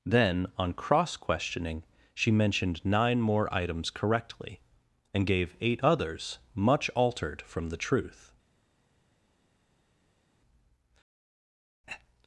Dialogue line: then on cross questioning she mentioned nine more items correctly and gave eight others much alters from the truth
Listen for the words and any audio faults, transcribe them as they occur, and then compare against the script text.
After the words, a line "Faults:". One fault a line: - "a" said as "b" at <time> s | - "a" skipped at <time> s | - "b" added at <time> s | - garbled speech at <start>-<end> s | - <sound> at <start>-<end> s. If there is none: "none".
then on cross questioning she mentioned nine more items correctly and gave eight others much altered from the truth
Faults:
- "alters" said as "altered" at 6.9 s